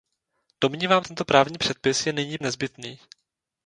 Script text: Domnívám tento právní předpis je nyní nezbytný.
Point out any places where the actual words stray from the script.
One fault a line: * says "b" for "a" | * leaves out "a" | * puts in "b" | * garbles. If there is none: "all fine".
all fine